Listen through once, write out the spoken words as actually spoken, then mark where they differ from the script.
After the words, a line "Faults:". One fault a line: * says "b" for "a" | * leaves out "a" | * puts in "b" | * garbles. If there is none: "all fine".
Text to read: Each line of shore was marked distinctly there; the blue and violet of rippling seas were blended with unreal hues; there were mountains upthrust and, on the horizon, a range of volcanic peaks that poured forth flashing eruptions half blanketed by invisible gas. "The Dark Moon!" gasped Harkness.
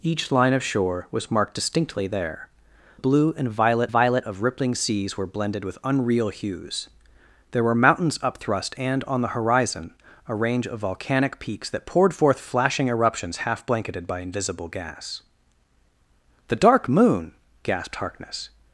Each line of shore was marked distinctly there; blue and violet violet of rippling seas were blended with unreal hues; there were mountains upthrust and, on the horizon, a range of volcanic peaks that poured forth flashing eruptions half blanketed by invisible gas. "The Dark Moon!" gasped Harkness.
Faults:
* leaves out "the"
* puts in "violet"